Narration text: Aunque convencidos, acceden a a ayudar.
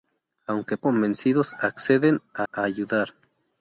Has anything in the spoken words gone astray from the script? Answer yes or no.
no